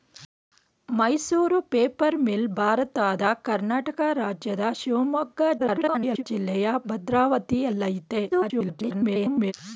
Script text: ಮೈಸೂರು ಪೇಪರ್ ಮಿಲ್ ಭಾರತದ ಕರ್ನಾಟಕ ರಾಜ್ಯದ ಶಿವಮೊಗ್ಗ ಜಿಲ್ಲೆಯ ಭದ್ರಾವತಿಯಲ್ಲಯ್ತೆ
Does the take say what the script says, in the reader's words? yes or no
no